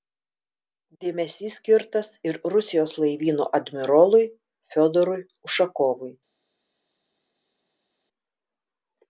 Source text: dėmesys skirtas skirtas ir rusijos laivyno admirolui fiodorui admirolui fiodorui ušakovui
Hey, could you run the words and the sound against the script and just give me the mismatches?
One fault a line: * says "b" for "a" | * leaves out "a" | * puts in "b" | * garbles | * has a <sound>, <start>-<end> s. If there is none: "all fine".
* leaves out "skirtas"
* leaves out "admirolui fiodorui"